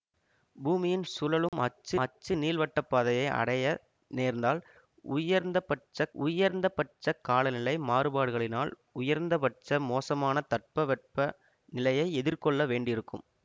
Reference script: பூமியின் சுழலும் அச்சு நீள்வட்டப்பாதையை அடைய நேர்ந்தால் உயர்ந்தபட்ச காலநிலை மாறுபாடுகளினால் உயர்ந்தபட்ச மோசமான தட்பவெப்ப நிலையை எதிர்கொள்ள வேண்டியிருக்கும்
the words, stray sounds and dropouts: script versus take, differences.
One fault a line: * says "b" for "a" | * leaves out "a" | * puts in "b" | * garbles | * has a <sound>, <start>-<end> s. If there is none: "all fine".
* has a dropout, 1.5-1.5 s
* puts in "அச்சு"
* puts in "உயர்ந்தபட்ச"